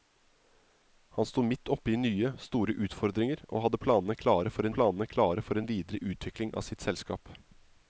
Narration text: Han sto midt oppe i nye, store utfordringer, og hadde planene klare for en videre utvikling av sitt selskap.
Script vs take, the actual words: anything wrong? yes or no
yes